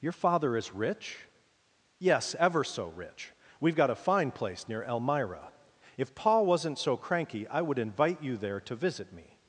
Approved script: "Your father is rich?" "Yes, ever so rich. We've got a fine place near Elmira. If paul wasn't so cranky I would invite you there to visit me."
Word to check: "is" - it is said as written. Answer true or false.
true